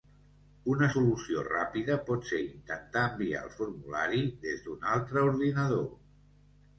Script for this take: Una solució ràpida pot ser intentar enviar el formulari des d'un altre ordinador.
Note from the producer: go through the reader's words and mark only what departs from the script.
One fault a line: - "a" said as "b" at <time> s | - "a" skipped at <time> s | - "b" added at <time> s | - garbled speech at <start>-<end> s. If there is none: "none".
none